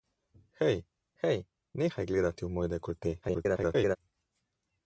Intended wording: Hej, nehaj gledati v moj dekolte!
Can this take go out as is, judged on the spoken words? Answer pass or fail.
fail